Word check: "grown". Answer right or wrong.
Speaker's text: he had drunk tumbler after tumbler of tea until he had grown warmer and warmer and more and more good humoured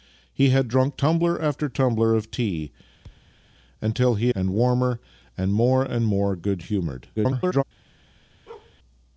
wrong